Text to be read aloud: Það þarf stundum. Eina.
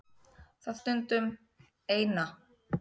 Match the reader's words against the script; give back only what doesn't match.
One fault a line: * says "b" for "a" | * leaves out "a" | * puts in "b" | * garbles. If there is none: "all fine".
* leaves out "þarf"